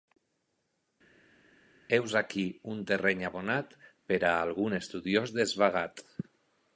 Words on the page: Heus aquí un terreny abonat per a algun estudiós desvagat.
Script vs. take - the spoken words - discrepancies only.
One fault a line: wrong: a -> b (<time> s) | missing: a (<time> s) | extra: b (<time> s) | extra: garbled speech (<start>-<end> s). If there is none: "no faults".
no faults